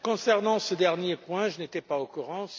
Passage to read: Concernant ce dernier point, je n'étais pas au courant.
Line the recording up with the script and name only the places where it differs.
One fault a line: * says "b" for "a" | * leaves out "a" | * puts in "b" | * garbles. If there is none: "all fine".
all fine